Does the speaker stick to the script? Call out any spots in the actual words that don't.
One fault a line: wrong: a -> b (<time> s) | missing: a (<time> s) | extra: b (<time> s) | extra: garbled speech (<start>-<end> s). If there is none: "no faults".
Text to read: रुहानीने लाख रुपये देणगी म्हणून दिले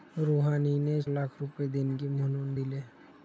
no faults